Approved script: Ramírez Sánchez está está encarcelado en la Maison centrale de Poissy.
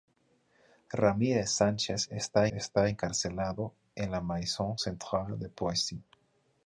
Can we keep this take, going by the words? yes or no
yes